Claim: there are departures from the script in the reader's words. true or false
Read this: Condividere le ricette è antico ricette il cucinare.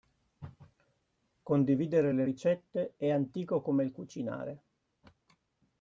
true